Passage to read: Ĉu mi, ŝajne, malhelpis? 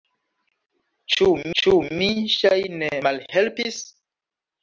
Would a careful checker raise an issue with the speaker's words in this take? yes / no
yes